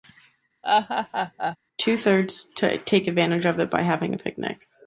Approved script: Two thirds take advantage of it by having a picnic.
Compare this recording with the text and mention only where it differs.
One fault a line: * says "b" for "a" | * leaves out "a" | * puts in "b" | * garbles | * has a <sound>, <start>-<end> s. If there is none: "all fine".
* has a laugh, 0.6-1.6 s